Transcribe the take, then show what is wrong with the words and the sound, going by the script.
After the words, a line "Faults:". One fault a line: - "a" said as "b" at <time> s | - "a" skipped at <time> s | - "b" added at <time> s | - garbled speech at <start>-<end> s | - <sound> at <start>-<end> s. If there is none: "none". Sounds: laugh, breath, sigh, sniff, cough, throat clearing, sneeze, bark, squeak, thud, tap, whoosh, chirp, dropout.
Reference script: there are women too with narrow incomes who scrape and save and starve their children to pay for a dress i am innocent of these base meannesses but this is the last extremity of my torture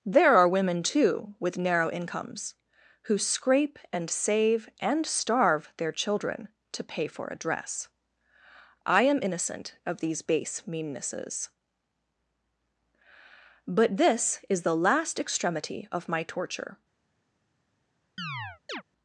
there are women too with narrow incomes who scrape and save and starve their children to pay for a dress i am innocent of these base meannesses but this is the last extremity of my torture
Faults:
- chirp at 18.2-18.8 s